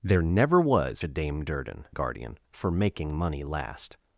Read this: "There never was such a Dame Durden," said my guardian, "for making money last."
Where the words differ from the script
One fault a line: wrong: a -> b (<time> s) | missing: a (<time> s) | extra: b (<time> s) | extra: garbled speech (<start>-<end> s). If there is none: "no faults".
missing: such (1.0 s)
missing: said my (1.9 s)